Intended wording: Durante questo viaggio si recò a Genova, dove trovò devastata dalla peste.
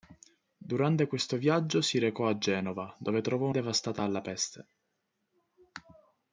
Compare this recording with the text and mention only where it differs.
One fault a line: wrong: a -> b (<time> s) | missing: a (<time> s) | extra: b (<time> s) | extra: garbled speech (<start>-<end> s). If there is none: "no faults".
no faults